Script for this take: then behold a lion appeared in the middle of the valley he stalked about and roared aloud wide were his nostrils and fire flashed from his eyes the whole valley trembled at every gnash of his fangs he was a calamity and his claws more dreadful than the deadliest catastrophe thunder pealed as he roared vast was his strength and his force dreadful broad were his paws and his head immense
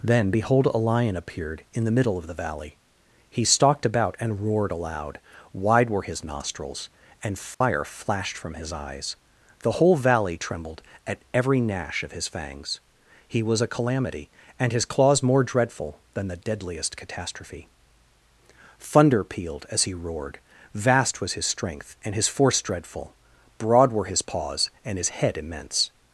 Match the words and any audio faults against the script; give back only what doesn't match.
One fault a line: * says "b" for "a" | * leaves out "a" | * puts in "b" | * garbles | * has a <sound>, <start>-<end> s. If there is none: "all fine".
* has a dropout, 7.5-7.6 s